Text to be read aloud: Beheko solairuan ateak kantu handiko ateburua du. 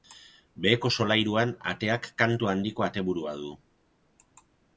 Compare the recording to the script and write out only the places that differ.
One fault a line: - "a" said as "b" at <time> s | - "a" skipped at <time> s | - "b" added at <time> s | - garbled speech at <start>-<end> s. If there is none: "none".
none